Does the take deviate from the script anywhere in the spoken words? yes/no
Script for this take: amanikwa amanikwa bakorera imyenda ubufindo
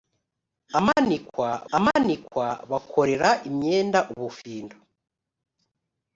no